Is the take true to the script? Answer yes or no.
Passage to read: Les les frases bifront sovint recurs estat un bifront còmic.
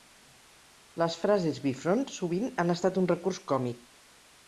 no